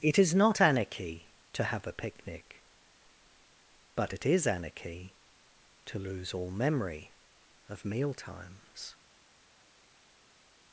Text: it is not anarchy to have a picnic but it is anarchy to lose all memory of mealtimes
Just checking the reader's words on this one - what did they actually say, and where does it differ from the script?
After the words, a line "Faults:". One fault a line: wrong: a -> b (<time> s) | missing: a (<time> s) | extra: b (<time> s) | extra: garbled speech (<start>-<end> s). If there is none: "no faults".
it is not anarchy to have a picnic but it is anarchy to lose all memory of mealtimes
Faults:
no faults